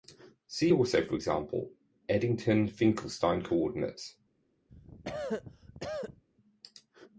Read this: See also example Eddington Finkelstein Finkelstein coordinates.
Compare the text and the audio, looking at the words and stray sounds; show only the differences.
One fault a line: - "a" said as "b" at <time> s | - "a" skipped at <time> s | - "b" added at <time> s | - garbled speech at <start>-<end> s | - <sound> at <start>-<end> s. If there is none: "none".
- "for" added at 1.0 s
- "Finkelstein" skipped at 3.4 s
- cough at 4.7-6.2 s